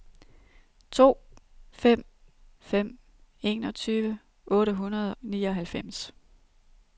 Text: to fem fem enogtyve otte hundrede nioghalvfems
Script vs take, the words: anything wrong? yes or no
no